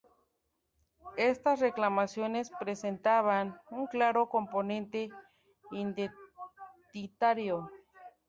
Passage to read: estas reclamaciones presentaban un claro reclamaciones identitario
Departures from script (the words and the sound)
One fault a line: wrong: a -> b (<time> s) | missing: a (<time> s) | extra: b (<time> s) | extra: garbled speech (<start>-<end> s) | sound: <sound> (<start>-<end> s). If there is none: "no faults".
wrong: reclamaciones -> componente (4.3 s)